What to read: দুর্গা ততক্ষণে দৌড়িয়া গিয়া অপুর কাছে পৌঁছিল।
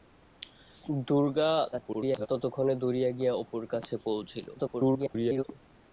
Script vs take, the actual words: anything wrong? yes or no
yes